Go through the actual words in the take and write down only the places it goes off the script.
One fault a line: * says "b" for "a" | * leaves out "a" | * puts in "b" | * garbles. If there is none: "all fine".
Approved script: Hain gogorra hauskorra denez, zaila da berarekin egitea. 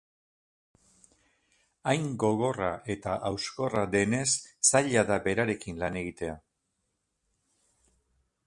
* puts in "eta"
* puts in "lan"